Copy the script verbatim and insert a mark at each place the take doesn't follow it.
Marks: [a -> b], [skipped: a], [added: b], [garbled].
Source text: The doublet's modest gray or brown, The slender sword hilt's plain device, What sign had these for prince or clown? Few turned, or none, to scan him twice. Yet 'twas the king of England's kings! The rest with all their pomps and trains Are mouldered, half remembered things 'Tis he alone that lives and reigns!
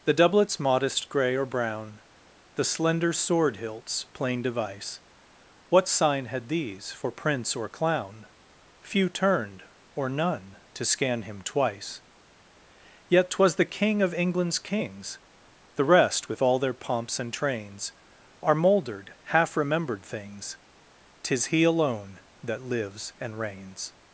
The doublet's modest gray or brown, The slender sword hilt's plain device, What sign had these for prince or clown? Few turned, or none, to scan him twice. Yet 'twas the king of England's kings! The rest with all their pomps and trains Are mouldered, half remembered things 'Tis he alone that lives and reigns!